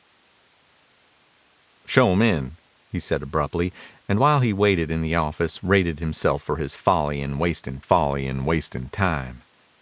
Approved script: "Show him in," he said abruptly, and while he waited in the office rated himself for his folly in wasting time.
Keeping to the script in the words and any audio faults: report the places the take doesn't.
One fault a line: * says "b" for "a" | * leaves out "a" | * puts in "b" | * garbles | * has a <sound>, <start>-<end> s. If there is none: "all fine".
* puts in "folly in wasting"